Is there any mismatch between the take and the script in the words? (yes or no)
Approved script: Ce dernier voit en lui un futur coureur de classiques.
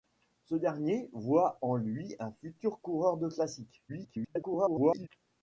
yes